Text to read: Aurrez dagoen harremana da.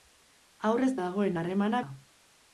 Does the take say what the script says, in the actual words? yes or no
yes